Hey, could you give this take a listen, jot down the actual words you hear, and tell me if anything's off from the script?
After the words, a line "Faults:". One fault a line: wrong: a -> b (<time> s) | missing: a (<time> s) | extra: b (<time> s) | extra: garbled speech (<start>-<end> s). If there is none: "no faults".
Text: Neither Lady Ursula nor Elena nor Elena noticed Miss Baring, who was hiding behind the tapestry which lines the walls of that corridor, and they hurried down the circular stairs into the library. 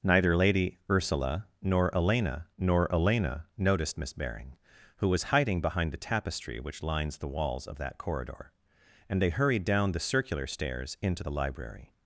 Neither Lady Ursula nor Elena nor Elena noticed Miss Baring, who was hiding behind the tapestry which lines the walls of that corridor, and they hurried down the circular stairs into the library.
Faults:
no faults